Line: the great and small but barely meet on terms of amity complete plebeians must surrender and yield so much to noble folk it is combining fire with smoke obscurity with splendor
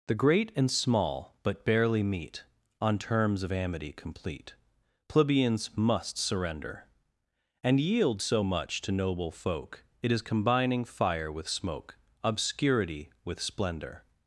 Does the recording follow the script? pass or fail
pass